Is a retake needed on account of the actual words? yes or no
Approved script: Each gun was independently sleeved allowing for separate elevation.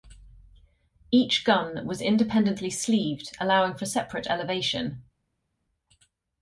no